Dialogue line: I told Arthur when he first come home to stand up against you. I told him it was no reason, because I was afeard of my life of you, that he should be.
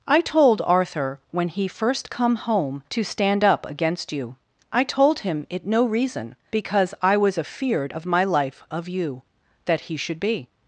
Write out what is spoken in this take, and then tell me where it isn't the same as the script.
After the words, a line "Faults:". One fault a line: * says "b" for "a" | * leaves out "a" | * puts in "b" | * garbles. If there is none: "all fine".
I told Arthur when he first come home to stand up against you. I told him it no reason, because I was afeard of my life of you, that he should be.
Faults:
* leaves out "was"